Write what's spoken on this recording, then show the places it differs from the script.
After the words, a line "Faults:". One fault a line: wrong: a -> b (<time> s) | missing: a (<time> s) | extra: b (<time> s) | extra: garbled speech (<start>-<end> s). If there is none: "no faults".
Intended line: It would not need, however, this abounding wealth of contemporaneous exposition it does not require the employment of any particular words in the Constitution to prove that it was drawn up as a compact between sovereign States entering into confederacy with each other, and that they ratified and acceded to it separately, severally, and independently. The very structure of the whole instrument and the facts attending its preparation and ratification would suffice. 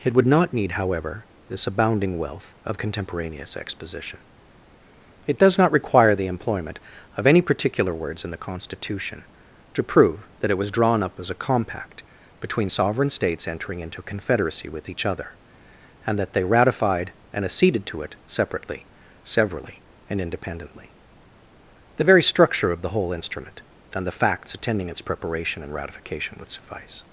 It would not need, however, this abounding wealth of contemporaneous exposition it does not require the employment of any particular words in the Constitution to prove that it was drawn up as a compact between sovereign States entering into confederacy with each other, and that they ratified and acceded to it separately, severally, and independently. The very structure of the whole instrument and the facts attending its preparation and ratification would suffice.
Faults:
no faults